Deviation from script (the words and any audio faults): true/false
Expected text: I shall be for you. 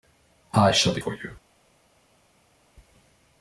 false